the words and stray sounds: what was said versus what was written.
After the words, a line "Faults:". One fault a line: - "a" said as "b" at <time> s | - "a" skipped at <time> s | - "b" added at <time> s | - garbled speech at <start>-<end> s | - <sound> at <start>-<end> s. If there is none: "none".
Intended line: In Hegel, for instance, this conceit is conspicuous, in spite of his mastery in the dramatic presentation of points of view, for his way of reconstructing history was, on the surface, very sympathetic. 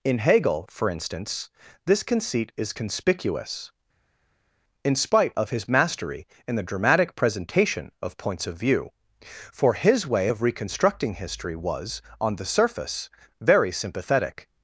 In Hegel, for instance, this conceit is conspicuous, in spite of his mastery in the dramatic presentation of points of view, for his way of reconstructing history was, on the surface, very sympathetic.
Faults:
none